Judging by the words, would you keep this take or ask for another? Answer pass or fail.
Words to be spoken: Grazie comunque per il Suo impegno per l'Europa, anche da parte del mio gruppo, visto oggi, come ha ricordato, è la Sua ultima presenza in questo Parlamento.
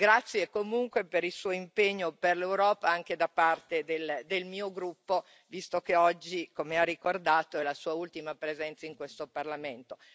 fail